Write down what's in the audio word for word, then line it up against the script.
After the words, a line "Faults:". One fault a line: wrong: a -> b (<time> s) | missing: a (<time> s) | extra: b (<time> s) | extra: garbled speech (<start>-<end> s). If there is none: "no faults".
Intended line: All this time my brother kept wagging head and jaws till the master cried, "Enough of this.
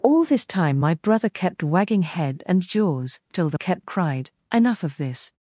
All this time my brother kept wagging head and jaws till the kept cried, "Enough of this.
Faults:
wrong: master -> kept (3.5 s)